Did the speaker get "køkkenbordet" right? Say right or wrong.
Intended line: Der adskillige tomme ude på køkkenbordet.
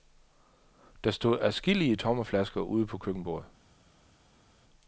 right